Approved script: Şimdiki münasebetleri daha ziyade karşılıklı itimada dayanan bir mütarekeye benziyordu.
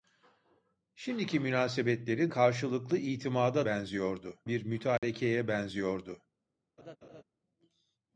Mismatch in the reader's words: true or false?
true